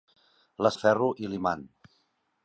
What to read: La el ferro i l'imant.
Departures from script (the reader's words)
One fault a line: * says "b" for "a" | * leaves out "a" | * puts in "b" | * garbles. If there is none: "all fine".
all fine